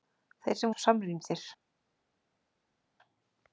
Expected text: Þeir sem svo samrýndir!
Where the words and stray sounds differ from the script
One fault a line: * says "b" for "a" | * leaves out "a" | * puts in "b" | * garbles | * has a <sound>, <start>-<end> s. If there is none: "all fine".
all fine